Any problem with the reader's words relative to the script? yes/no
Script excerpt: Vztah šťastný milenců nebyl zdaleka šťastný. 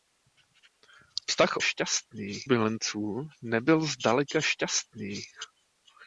no